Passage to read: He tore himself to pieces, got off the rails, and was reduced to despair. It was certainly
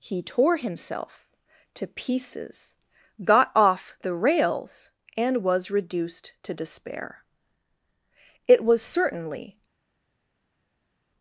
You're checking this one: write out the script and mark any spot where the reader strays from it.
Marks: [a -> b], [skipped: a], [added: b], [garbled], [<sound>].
He tore himself to pieces, got off the rails, and was reduced to despair. It was certainly